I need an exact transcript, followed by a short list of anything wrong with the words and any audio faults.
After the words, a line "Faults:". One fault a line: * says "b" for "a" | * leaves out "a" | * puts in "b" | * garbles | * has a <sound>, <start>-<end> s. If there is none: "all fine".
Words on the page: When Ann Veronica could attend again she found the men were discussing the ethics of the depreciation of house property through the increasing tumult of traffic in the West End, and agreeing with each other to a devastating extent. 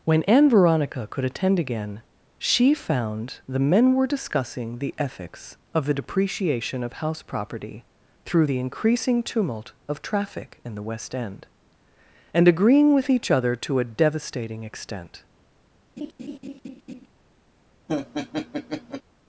When Ann Veronica could attend again she found the men were discussing the ethics of the depreciation of house property through the increasing tumult of traffic in the West End, and agreeing with each other to a devastating extent.
Faults:
* has a laugh, 16.0-17.1 s
* has a laugh, 17.9-19.0 s